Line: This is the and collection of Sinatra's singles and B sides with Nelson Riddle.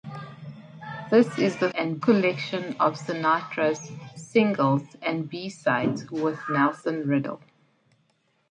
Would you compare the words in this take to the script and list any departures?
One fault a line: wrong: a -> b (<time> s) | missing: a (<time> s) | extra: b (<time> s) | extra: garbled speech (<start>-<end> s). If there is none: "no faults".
no faults